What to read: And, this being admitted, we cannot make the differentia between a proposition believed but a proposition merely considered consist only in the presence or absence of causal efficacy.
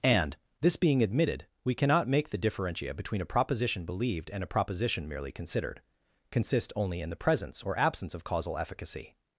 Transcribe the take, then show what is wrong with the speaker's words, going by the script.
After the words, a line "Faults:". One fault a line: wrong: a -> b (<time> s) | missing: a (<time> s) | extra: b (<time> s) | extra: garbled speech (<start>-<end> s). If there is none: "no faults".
And, this being admitted, we cannot make the differentia between a proposition believed and a proposition merely considered consist only in the presence or absence of causal efficacy.
Faults:
wrong: but -> and (4.3 s)